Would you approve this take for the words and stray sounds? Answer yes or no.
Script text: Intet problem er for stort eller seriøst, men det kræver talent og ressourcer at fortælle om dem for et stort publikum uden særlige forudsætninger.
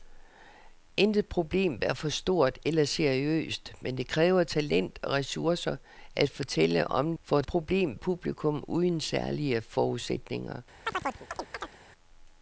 no